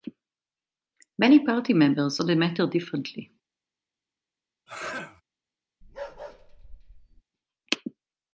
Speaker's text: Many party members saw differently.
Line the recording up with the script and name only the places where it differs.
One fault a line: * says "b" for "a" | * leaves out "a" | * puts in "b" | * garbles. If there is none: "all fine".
* puts in "the matter"